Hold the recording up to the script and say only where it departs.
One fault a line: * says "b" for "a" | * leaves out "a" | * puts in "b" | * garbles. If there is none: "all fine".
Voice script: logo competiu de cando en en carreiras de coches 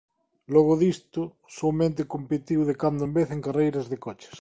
* puts in "disto soamente"
* puts in "vez"